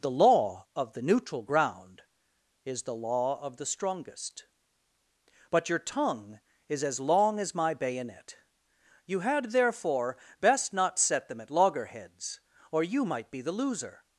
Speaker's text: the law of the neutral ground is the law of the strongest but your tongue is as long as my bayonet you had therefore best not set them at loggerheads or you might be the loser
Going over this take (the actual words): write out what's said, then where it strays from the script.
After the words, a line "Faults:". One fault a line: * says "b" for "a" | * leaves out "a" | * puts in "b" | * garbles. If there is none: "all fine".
the law of the neutral ground is the law of the strongest but your tongue is as long as my bayonet you had therefore best not set them at loggerheads or you might be the loser
Faults:
all fine